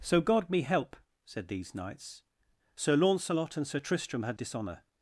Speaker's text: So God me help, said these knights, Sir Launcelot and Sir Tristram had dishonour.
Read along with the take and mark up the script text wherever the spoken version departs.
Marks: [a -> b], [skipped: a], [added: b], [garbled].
So God me help, said these knights, Sir Launcelot and Sir Tristram had dishonour.